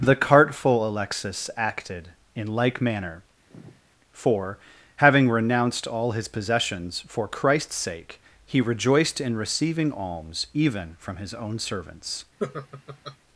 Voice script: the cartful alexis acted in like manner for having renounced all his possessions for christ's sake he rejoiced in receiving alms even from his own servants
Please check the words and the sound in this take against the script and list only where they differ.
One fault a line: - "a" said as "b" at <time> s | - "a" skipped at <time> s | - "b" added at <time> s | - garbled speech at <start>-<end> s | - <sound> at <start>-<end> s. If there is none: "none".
- sigh at 3.5-3.8 s
- laugh at 12.4-13.2 s